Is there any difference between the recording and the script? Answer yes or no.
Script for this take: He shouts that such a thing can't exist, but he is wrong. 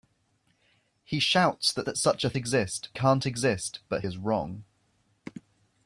yes